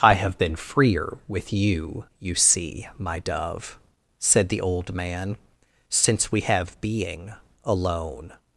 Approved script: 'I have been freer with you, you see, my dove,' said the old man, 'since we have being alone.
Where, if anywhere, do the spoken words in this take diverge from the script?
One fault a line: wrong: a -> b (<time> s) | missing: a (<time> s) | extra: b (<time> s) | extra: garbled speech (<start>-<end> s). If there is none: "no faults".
no faults